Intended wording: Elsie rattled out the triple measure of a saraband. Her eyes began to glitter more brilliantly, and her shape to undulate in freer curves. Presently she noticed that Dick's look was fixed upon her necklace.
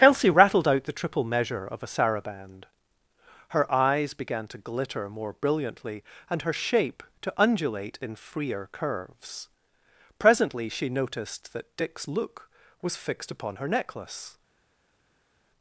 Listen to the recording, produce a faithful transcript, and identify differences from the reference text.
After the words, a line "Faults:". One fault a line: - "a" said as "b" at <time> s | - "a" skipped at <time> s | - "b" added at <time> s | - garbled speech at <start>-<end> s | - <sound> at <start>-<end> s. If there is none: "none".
Elsie rattled out the triple measure of a saraband. Her eyes began to glitter more brilliantly, and her shape to undulate in freer curves. Presently she noticed that Dick's look was fixed upon her necklace.
Faults:
none